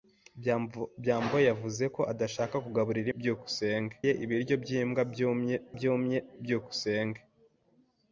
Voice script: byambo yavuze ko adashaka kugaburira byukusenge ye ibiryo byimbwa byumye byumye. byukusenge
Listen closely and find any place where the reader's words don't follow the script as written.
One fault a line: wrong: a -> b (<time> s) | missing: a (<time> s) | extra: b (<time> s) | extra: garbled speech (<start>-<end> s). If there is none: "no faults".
no faults